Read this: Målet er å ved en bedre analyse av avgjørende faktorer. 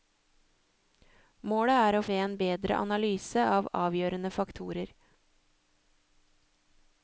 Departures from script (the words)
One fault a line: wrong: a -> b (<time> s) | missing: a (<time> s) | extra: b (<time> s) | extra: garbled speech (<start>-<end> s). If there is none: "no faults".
no faults